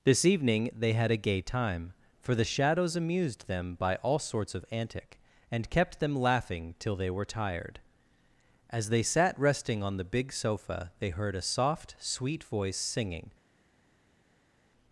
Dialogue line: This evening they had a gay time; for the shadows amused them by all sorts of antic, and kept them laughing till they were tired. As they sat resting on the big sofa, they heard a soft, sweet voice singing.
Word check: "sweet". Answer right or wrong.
right